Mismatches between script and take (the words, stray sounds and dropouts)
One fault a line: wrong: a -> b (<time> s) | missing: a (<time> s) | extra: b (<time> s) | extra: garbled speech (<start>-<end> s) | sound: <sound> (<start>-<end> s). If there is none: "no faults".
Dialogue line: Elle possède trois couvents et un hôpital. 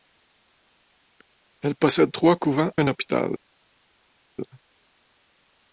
missing: et (2.7 s)